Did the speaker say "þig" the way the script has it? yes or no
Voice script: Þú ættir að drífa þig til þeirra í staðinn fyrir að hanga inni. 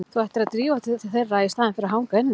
no